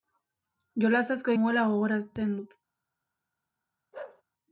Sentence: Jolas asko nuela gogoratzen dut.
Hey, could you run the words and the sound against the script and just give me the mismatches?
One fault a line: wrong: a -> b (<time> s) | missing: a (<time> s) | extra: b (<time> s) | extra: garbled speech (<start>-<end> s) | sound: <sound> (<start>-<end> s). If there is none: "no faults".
sound: bark (3.9-4.2 s)